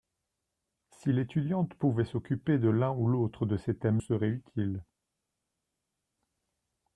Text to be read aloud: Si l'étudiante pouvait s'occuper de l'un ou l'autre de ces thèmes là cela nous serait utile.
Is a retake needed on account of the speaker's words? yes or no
yes